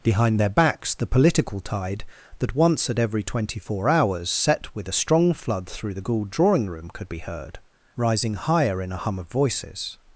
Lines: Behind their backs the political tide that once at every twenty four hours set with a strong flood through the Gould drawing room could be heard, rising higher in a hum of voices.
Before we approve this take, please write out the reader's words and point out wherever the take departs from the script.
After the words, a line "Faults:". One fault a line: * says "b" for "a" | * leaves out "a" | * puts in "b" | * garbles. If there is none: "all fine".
Behind their backs the political tide that once at every twenty four hours set with a strong flood through the Gould drawing room could be heard, rising higher in a hum of voices.
Faults:
all fine